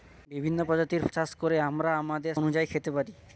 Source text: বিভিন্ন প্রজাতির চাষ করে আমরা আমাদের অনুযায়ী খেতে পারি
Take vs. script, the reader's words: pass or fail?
pass